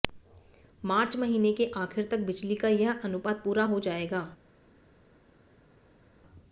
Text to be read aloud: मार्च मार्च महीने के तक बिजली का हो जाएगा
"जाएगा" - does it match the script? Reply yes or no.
yes